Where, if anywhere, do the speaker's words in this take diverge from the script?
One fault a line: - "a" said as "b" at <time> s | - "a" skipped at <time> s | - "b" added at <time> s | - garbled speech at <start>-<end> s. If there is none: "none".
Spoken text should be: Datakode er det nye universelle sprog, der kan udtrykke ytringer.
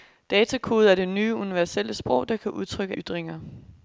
none